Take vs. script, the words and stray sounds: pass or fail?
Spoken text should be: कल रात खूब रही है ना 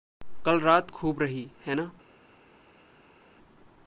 pass